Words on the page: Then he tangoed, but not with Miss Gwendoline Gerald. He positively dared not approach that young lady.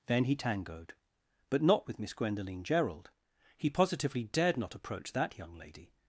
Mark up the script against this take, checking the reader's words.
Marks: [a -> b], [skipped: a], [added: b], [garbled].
Then he tangoed, but not with Miss Gwendoline Gerald. He positively dared not approach that young lady.